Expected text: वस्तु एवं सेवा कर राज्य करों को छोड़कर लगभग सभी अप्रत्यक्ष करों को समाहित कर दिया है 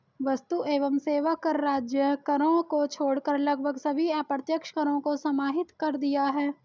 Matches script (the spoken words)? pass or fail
pass